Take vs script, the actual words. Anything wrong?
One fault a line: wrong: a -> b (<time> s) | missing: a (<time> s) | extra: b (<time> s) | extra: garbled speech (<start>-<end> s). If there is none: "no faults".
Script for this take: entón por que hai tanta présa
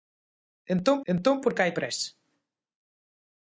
extra: entón (1.1 s)
missing: tanta (1.7 s)